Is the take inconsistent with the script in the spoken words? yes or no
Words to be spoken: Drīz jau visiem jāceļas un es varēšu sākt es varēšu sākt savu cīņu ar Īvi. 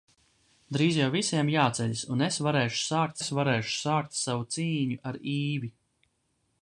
no